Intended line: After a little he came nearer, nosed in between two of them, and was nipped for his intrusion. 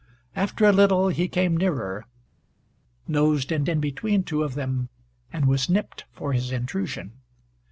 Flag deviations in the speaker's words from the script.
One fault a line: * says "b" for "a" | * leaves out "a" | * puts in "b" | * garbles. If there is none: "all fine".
* puts in "in"